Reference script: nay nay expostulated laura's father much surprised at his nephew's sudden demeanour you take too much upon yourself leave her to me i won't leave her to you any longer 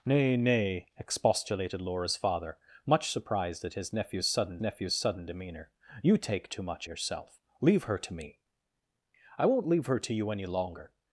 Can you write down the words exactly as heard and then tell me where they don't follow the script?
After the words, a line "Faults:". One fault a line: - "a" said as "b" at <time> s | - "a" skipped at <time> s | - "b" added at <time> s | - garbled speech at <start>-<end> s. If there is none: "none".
nay nay expostulated laura's father much surprised at his nephew's sudden nephew's sudden demeanour you take too much yourself leave her to me i won't leave her to you any longer
Faults:
- "nephew's sudden" added at 4.6 s
- "upon" skipped at 6.9 s